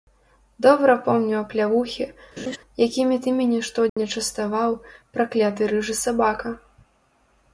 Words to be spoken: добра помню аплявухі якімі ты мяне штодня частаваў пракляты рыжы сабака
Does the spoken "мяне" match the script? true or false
true